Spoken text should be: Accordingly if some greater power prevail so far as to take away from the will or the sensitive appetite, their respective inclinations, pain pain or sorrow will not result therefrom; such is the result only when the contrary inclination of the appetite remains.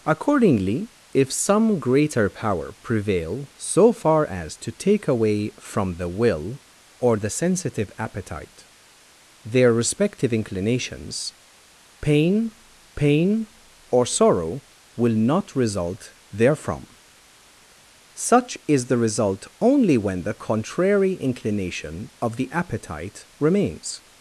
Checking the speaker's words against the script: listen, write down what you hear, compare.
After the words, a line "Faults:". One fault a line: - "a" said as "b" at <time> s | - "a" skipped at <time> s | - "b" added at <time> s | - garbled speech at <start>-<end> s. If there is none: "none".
Accordingly if some greater power prevail so far as to take away from the will or the sensitive appetite, their respective inclinations, pain pain or sorrow will not result therefrom; such is the result only when the contrary inclination of the appetite remains.
Faults:
none